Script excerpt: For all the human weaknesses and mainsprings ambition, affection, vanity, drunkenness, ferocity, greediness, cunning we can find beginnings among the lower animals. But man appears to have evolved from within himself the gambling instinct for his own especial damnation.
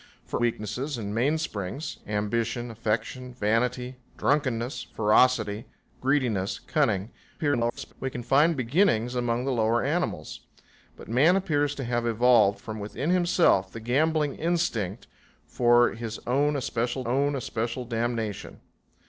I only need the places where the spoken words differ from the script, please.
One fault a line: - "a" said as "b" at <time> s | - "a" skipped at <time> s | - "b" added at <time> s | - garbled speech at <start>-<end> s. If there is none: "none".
- "all the human" skipped at 0.4 s
- garbled speech at 7.4-7.9 s
- "own especial" added at 17.1 s